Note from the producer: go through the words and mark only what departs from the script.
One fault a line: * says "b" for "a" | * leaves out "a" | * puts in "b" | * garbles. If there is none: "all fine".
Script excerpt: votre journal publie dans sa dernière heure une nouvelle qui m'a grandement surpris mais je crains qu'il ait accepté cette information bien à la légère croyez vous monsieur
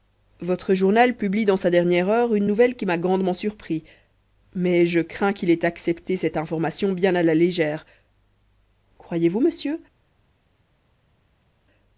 all fine